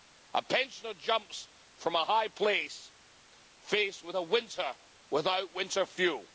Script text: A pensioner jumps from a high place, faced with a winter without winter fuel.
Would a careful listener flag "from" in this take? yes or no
no